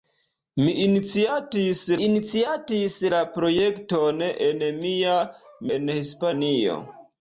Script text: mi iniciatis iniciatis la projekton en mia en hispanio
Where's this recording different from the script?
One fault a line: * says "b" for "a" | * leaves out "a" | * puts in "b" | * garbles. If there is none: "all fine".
all fine